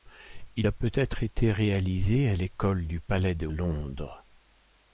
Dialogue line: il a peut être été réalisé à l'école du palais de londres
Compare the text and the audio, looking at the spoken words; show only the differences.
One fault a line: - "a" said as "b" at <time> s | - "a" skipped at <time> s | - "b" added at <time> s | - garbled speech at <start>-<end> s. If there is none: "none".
none